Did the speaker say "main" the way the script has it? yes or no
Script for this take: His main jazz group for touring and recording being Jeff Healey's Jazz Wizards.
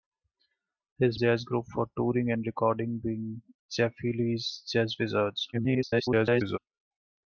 no